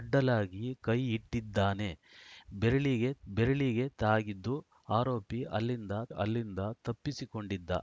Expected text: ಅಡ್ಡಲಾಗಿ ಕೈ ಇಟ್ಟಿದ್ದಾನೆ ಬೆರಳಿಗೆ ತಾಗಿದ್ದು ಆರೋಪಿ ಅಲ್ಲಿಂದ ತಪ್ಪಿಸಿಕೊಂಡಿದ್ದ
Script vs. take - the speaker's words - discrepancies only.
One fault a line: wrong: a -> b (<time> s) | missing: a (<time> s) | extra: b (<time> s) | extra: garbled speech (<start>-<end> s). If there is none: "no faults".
extra: ಬೆರಳಿಗೆ (3.3 s)
extra: ಅಲ್ಲಿಂದ (6.1 s)